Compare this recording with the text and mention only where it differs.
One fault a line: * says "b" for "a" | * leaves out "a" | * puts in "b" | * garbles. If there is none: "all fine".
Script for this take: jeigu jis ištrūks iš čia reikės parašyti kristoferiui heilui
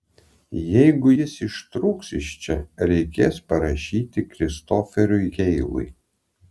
all fine